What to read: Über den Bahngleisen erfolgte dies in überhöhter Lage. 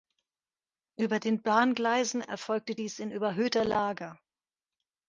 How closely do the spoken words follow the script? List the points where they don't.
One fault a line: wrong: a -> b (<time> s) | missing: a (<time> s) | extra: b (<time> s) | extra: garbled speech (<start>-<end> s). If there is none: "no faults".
no faults